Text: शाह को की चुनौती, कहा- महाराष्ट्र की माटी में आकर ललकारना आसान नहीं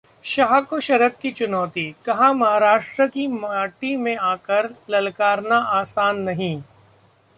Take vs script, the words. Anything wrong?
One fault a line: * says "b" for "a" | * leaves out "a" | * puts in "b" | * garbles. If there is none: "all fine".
* puts in "शरद"